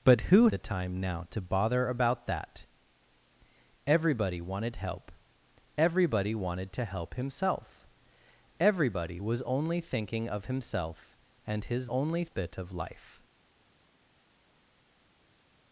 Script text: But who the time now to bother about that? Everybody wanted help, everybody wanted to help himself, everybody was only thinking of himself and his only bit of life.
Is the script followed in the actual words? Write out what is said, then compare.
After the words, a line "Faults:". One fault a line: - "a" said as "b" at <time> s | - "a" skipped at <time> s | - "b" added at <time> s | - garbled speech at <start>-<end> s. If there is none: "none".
But who the time now to bother about that? Everybody wanted help, everybody wanted to help himself, everybody was only thinking of himself and his only bit of life.
Faults:
none